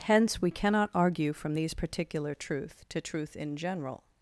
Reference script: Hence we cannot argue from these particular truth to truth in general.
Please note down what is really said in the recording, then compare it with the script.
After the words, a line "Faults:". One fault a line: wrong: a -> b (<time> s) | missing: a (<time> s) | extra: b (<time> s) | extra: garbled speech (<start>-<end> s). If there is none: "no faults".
Hence we cannot argue from these particular truth to truth in general.
Faults:
no faults